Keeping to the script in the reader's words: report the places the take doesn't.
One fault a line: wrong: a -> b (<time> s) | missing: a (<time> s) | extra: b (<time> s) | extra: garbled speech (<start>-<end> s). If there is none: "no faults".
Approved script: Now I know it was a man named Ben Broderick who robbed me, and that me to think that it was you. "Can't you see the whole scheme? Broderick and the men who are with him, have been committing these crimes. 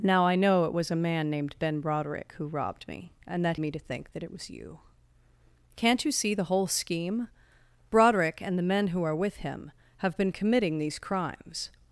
no faults